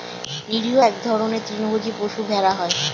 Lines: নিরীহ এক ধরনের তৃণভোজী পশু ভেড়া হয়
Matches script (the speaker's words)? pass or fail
pass